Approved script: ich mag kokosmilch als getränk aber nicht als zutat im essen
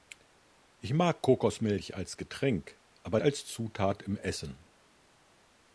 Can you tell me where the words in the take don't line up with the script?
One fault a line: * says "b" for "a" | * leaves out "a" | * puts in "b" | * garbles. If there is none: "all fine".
* leaves out "nicht"